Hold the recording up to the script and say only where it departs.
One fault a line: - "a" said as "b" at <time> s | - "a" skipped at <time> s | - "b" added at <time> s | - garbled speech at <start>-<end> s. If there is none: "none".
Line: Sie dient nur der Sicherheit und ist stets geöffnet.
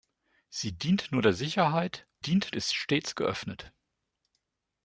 - "und" said as "dient" at 2.2 s